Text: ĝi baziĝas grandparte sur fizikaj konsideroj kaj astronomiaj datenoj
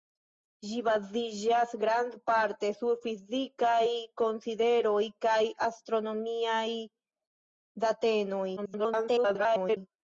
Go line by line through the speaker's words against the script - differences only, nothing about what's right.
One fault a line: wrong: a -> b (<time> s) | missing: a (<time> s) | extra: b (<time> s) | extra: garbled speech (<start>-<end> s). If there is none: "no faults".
extra: garbled speech (8.6-9.8 s)